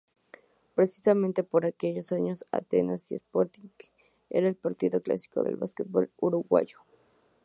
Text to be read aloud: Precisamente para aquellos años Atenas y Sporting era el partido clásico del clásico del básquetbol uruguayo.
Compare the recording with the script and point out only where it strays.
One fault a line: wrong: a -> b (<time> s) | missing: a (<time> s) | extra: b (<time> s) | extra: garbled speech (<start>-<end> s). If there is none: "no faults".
wrong: para -> por (1.4 s)
missing: clásico del (5.5 s)